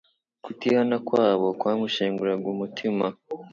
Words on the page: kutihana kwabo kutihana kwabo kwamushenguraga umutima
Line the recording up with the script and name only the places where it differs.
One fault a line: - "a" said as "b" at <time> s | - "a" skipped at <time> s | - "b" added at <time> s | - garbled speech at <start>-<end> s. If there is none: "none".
- "kutihana kwabo" skipped at 1.5 s